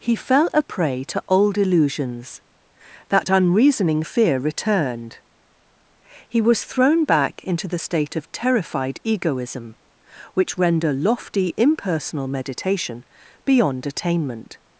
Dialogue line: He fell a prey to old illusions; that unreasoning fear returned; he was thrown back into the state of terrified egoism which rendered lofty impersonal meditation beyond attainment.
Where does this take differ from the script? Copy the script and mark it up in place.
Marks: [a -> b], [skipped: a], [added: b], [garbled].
He fell a prey to old illusions; that unreasoning fear returned; he was thrown back into the state of terrified egoism which [rendered -> render] lofty impersonal meditation beyond attainment.